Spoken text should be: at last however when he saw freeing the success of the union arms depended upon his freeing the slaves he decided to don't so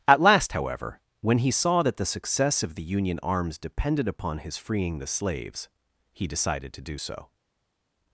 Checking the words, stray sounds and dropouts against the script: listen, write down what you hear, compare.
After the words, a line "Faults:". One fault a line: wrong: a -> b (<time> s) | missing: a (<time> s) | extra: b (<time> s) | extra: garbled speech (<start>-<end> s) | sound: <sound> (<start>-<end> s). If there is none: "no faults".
at last however when he saw that the success of the union arms depended upon his freeing the slaves he decided to do so
Faults:
wrong: freeing -> that (1.8 s)
wrong: don't -> do (6.8 s)